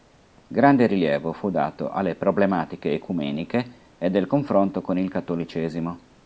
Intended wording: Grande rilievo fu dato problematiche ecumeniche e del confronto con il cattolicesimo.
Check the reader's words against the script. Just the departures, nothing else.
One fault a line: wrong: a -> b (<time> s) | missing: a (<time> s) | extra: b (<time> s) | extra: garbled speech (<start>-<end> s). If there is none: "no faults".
extra: alle (1.9 s)